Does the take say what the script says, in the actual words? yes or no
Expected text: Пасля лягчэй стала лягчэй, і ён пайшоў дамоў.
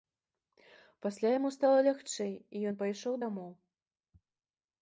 no